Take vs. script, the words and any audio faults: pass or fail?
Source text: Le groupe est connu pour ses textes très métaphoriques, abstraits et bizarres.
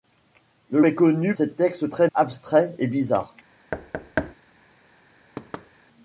fail